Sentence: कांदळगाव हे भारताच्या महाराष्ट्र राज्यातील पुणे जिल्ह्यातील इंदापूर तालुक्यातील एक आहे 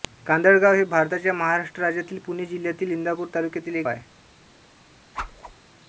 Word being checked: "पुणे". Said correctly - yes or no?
yes